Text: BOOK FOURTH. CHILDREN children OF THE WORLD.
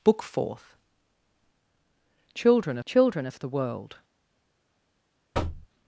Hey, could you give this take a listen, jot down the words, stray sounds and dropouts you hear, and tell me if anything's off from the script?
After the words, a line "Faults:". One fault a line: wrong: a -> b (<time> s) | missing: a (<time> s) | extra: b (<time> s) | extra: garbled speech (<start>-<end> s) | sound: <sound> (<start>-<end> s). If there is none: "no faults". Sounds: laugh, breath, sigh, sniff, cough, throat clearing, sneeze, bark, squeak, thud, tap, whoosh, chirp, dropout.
BOOK FOURTH. CHILDREN children OF THE WORLD.
Faults:
sound: thud (5.3-5.7 s)